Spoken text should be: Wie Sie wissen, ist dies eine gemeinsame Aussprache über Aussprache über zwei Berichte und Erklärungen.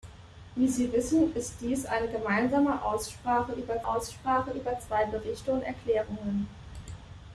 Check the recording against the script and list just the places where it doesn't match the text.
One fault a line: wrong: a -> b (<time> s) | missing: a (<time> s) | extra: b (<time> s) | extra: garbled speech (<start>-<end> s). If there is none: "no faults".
no faults